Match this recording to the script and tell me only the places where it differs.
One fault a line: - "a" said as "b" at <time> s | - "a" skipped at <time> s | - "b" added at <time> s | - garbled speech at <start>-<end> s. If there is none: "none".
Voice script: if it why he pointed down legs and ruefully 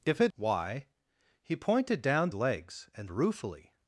none